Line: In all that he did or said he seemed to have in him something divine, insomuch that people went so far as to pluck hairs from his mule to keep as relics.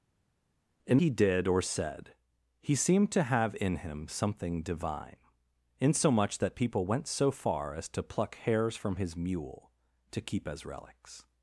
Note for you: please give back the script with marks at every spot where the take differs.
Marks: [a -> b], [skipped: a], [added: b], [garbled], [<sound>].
In [skipped: all that] he did or said he seemed to have in him something divine, insomuch that people went so far as to pluck hairs from his mule to keep as relics.